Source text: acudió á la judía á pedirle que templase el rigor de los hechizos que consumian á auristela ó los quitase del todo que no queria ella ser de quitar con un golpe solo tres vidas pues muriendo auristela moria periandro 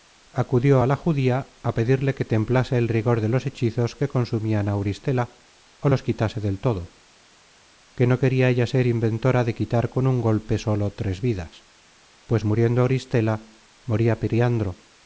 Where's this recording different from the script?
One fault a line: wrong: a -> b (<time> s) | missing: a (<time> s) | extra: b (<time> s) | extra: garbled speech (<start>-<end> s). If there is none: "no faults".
extra: inventora (8.9 s)